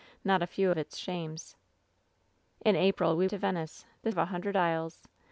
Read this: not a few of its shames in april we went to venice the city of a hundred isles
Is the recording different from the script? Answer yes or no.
yes